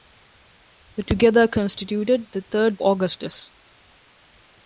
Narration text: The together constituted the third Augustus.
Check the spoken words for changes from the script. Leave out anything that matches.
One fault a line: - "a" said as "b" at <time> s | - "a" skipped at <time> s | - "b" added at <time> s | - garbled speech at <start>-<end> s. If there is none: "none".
none